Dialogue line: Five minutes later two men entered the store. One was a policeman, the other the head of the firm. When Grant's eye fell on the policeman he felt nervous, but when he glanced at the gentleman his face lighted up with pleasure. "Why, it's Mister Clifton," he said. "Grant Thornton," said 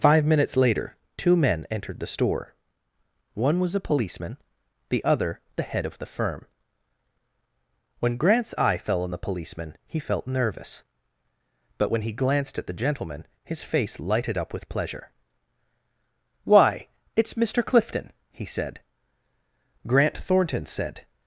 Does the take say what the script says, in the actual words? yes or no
yes